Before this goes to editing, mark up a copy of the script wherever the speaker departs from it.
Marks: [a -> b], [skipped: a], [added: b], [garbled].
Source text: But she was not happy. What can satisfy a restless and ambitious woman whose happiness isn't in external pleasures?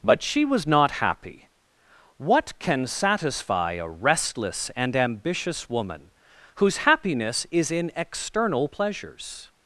But she was not happy. What can satisfy a restless and ambitious woman whose happiness [isn't -> is] in external pleasures?